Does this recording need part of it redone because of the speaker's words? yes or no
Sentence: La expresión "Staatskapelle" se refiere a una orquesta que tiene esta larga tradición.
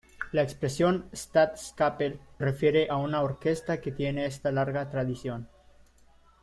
yes